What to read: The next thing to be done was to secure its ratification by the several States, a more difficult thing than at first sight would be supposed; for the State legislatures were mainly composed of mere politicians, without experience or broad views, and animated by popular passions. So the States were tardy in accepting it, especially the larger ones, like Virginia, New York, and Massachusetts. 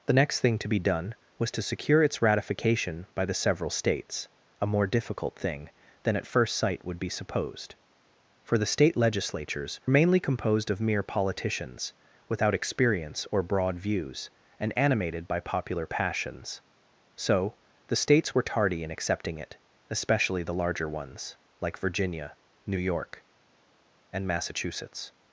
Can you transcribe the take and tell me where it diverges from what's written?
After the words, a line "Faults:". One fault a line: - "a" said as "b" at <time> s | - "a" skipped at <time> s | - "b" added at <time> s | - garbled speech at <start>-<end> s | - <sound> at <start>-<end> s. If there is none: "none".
The next thing to be done was to secure its ratification by the several States, a more difficult thing than at first sight would be supposed; for the State legislatures mainly composed of mere politicians, without experience or broad views, and animated by popular passions. So the States were tardy in accepting it, especially the larger ones, like Virginia, New York, and Massachusetts.
Faults:
- "were" skipped at 9.8 s